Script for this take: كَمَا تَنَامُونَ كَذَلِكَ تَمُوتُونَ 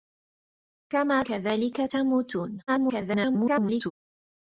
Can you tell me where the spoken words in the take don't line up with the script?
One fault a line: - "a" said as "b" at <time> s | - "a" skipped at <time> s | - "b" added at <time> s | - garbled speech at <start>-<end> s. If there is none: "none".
- "تَنَامُونَ" skipped at 1.2 s
- garbled speech at 2.7-3.9 s